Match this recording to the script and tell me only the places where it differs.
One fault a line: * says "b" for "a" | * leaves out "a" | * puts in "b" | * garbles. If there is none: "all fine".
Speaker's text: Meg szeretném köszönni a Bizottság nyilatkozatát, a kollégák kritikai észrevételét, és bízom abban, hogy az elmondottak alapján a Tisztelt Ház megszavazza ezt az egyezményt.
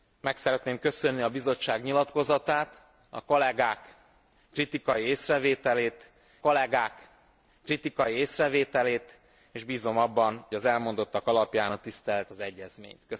* puts in "kollégák kritikai észrevételét"
* leaves out "hogy"
* leaves out "Ház megszavazza ezt"